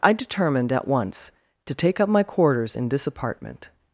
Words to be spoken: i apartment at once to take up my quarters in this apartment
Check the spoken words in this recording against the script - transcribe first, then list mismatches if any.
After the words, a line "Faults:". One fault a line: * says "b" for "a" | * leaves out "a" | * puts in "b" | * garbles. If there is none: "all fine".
i determined at once to take up my quarters in this apartment
Faults:
* says "determined" for "apartment"